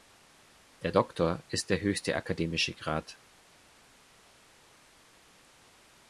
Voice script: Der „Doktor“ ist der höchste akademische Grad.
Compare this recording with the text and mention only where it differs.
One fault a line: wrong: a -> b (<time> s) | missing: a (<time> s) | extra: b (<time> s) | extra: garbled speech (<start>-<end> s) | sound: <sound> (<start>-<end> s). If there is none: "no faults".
no faults